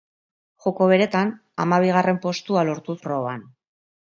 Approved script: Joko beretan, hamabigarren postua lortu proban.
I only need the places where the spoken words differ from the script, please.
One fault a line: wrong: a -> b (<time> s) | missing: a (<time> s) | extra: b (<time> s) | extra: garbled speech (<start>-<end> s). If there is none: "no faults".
no faults